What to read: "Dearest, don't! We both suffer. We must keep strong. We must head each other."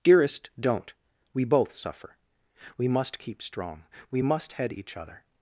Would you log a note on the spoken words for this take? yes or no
no